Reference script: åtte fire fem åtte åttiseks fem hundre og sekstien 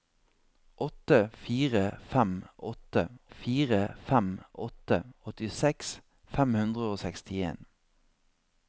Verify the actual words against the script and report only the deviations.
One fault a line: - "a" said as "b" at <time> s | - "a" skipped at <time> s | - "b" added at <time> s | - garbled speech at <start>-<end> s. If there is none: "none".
- "fire fem åtte" added at 3.3 s